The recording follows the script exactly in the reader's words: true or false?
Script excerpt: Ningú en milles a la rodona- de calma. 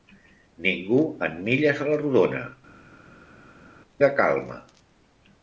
true